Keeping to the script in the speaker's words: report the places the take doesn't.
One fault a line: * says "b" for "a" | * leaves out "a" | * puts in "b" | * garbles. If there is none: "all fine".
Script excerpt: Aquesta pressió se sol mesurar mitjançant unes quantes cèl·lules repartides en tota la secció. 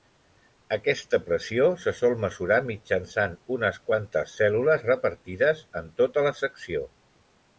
all fine